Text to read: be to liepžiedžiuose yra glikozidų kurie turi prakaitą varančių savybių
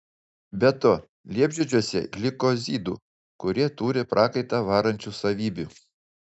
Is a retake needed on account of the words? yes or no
yes